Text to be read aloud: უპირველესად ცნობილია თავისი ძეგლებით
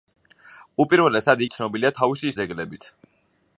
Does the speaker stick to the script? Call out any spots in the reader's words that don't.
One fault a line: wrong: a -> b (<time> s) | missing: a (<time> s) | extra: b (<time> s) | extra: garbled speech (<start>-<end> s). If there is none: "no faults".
no faults